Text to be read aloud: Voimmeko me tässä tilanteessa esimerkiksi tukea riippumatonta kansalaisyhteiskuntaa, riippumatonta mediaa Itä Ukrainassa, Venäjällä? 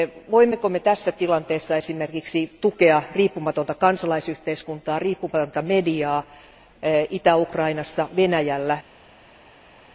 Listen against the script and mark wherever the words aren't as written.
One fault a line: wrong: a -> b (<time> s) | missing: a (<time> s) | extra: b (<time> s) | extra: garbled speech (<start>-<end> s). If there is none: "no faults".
no faults